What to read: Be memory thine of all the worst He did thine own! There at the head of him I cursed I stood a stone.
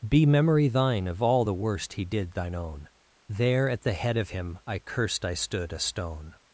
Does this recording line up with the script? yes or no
yes